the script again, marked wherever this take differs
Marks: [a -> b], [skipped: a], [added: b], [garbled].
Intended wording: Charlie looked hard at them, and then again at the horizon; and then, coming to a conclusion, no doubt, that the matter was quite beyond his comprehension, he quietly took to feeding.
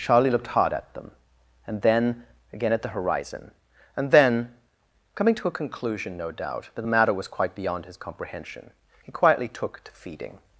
Charlie looked hard at them, and then again at the horizon; and then, coming to a conclusion, no doubt, that the matter was quite beyond his comprehension, he quietly took to feeding.